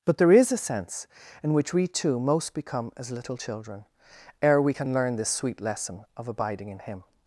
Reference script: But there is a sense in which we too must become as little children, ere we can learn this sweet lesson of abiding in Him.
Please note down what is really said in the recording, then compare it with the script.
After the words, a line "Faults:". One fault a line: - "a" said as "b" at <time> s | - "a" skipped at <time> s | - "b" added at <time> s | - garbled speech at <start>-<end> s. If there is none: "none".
But there is a sense in which we too most become as little children, ere we can learn this sweet lesson of abiding in Him.
Faults:
- "must" said as "most" at 2.2 s